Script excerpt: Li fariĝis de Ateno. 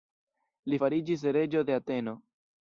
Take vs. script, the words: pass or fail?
fail